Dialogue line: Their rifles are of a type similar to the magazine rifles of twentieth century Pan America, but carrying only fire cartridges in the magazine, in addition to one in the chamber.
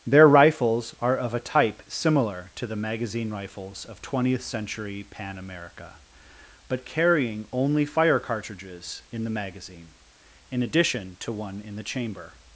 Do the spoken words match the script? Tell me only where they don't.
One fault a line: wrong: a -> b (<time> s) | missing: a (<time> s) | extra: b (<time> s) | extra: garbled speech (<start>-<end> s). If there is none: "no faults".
no faults